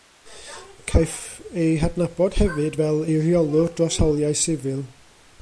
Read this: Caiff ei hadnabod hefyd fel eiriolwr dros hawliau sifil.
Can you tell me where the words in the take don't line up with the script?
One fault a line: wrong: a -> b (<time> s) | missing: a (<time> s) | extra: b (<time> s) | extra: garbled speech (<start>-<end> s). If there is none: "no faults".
no faults